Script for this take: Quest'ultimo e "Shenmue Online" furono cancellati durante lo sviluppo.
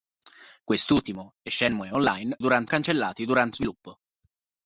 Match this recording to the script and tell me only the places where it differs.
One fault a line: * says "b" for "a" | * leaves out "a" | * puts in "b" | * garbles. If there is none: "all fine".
* says "durante" for "furono"
* leaves out "lo"